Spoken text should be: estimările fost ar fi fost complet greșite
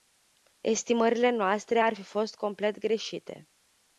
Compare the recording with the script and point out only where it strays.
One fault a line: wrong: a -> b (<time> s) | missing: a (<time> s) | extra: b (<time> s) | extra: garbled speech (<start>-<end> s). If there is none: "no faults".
wrong: fost -> noastre (1.3 s)